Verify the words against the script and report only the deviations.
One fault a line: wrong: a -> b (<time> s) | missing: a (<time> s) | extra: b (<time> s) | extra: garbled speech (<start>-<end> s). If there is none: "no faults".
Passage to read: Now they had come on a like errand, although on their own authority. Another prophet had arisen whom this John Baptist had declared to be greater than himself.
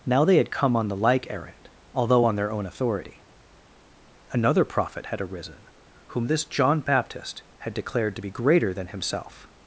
wrong: a -> the (0.9 s)